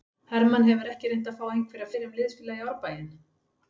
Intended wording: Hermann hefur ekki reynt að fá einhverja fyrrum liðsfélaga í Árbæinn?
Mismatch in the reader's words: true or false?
false